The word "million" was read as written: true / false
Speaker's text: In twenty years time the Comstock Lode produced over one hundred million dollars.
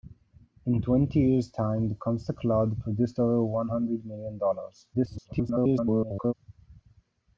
true